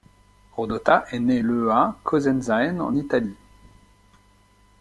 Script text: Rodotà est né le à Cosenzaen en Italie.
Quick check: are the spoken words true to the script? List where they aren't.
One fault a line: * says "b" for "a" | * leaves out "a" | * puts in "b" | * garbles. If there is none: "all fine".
all fine